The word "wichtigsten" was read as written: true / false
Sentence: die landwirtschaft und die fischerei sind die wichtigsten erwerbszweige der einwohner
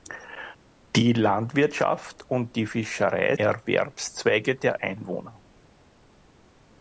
false